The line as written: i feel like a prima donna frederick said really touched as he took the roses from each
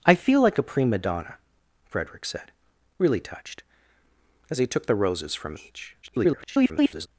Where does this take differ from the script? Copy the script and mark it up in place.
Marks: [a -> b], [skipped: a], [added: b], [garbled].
i feel like a prima donna frederick said really touched as he took the roses from each [garbled]